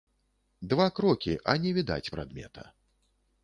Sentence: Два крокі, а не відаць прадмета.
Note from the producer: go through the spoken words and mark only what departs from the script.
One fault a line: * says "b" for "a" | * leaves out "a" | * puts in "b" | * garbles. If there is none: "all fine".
all fine